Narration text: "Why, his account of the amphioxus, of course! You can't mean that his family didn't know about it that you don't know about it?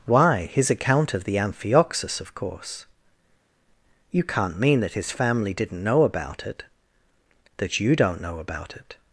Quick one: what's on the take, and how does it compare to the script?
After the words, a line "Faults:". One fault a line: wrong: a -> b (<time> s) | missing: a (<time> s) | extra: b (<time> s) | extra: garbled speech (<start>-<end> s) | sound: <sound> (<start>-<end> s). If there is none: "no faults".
"Why, his account of the amphioxus, of course! You can't mean that his family didn't know about it that you don't know about it?
Faults:
no faults